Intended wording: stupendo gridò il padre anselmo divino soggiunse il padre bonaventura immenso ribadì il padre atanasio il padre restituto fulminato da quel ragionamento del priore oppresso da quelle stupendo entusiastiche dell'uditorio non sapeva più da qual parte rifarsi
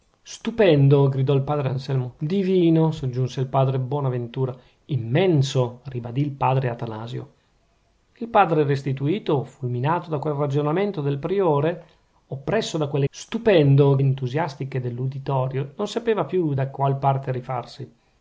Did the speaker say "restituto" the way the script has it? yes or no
yes